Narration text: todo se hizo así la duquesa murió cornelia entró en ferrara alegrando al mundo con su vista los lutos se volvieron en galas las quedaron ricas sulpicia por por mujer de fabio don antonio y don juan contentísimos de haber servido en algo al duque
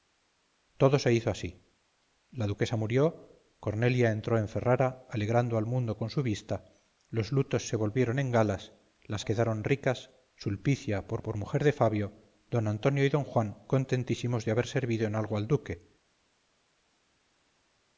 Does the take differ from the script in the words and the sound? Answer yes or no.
no